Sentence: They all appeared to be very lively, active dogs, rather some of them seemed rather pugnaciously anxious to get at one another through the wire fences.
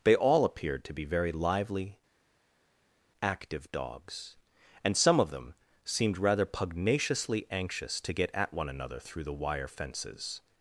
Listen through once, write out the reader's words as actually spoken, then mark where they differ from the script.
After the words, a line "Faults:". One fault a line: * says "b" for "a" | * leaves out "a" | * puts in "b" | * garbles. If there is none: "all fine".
They all appeared to be very lively, active dogs, and some of them seemed rather pugnaciously anxious to get at one another through the wire fences.
Faults:
* says "and" for "rather"